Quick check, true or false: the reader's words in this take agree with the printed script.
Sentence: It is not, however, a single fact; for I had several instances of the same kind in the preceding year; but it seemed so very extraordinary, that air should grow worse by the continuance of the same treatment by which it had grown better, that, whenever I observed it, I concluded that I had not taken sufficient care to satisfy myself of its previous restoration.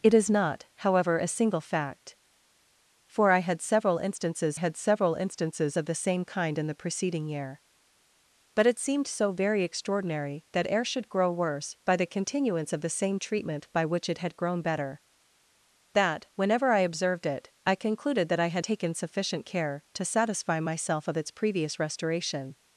false